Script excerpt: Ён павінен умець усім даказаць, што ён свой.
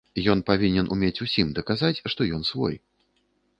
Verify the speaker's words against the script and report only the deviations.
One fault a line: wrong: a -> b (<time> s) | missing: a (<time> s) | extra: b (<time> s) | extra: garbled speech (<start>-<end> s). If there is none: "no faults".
no faults